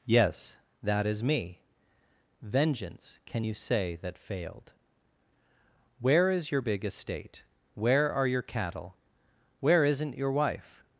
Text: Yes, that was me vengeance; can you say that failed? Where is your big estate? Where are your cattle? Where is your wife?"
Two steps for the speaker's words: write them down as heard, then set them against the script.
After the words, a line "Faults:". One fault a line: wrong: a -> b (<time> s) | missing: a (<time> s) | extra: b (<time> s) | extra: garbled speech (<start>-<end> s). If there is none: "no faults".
Yes, that is me vengeance; can you say that failed? Where is your big estate? Where are your cattle? Where isn't your wife?"
Faults:
wrong: was -> is (1.1 s)
wrong: is -> isn't (9.8 s)